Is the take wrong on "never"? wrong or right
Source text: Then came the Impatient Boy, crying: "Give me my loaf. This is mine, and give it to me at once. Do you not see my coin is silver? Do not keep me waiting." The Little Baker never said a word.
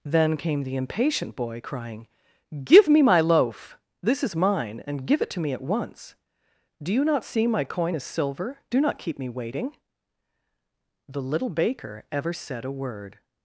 wrong